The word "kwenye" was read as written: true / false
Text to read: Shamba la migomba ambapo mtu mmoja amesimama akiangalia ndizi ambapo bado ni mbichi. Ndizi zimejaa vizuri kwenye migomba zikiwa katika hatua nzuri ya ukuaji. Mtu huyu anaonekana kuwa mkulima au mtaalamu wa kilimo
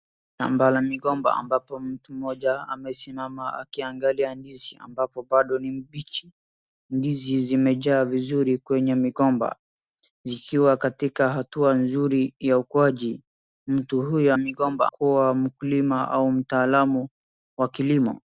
true